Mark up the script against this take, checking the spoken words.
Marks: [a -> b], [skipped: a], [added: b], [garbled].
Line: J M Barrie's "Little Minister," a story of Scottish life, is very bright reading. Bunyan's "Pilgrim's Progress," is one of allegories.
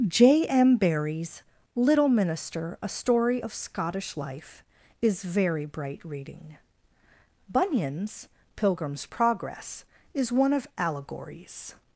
J M Barrie's "Little Minister," a story of Scottish life, is very bright reading. Bunyan's "Pilgrim's Progress," is one of allegories.